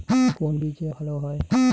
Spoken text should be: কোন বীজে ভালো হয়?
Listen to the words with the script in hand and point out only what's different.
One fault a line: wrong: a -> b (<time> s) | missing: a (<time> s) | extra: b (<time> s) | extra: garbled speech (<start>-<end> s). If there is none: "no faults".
no faults